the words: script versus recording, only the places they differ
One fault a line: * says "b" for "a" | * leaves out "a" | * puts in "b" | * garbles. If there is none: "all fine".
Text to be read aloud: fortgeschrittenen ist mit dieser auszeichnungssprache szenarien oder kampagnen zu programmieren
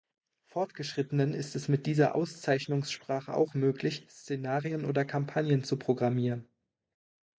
* puts in "es"
* puts in "auch möglich"